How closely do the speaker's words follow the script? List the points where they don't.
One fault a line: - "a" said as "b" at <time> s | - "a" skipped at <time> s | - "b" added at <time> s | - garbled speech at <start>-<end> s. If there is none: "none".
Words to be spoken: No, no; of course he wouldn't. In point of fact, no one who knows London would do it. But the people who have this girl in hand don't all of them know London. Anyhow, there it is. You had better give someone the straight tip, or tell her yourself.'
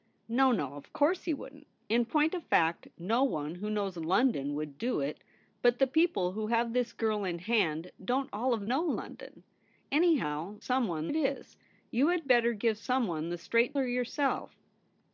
- "them" skipped at 8.7 s
- "there" said as "someone" at 10.6 s
- "tip or tell" skipped at 13.8 s